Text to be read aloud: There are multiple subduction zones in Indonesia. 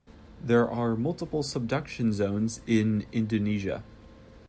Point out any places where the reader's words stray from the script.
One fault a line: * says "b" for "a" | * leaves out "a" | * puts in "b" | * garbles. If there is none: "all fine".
all fine